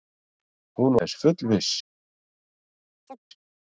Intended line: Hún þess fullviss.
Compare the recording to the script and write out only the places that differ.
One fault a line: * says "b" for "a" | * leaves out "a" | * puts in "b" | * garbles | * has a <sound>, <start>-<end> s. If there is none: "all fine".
* has a chirp, 3.1-3.2 s